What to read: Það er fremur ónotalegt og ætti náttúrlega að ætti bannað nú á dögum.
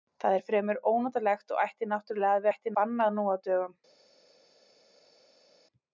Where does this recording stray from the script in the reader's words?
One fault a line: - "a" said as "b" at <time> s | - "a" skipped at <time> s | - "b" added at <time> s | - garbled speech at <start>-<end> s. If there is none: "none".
none